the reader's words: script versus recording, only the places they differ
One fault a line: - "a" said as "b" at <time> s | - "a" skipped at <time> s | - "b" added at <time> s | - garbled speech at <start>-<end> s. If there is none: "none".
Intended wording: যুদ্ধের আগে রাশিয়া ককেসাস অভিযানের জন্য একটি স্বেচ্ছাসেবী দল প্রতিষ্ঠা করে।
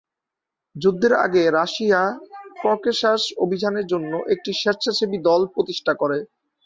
none